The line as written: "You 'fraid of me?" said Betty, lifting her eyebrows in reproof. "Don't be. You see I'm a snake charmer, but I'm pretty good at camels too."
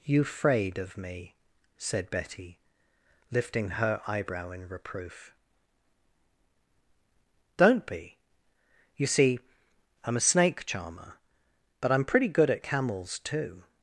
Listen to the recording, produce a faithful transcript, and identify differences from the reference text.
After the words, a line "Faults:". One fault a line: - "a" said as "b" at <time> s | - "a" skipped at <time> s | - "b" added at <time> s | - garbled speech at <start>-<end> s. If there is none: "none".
"You 'fraid of me?" said Betty, lifting her eyebrow in reproof. "Don't be. You see I'm a snake charmer, but I'm pretty good at camels too."
Faults:
- "eyebrows" said as "eyebrow" at 4.1 s